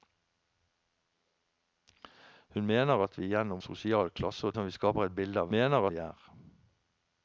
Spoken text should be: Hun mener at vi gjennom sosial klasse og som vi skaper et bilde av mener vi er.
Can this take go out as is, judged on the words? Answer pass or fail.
pass